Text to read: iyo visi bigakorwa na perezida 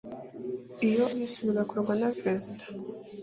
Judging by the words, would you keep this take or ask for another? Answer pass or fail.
pass